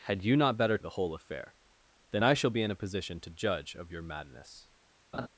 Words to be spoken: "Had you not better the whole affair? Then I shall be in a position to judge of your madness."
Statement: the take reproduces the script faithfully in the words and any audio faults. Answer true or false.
false